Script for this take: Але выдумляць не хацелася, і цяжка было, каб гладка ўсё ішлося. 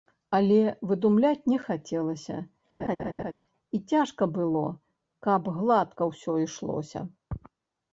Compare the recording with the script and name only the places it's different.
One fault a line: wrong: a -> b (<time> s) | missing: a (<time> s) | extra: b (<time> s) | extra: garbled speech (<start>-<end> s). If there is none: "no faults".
no faults